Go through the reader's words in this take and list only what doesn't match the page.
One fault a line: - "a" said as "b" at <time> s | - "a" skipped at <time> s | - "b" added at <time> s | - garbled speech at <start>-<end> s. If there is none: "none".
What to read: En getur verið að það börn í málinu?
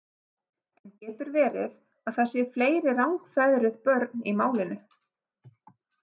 - "séu fleiri rangfeðruð" added at 2.3 s